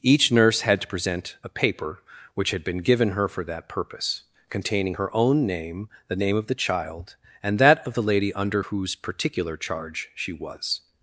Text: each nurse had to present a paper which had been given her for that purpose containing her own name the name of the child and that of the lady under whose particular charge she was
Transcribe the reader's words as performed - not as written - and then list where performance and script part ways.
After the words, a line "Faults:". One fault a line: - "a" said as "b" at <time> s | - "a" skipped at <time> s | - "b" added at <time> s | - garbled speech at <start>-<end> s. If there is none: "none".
each nurse had to present a paper which had been given her for that purpose containing her own name the name of the child and that of the lady under whose particular charge she was
Faults:
none